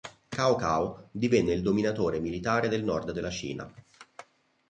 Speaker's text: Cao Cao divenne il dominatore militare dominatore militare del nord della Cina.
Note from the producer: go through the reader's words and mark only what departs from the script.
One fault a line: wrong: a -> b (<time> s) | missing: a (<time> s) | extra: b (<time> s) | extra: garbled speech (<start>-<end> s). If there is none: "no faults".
missing: dominatore militare (2.7 s)